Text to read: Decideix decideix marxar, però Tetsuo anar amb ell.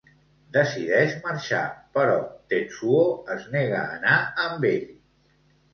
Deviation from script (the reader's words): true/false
true